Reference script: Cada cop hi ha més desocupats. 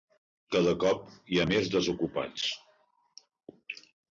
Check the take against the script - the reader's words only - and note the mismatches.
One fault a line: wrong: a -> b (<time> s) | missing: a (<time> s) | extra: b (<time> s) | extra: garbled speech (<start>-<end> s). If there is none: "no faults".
no faults